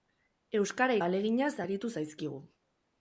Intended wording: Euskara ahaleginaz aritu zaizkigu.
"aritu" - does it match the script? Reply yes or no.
yes